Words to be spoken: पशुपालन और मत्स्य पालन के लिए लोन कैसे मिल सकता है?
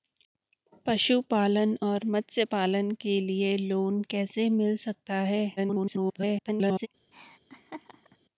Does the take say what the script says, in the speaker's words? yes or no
no